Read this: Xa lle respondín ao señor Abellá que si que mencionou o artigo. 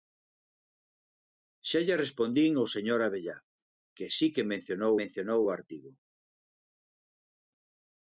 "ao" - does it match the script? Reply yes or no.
yes